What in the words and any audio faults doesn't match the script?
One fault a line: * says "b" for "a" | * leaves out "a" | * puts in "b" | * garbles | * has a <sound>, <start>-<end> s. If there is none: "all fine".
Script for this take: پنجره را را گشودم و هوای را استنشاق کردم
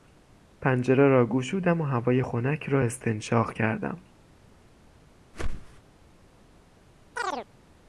* leaves out "را"
* puts in "خنک"
* has a whoosh, 5.3-5.8 s
* has a chirp, 7.2-7.5 s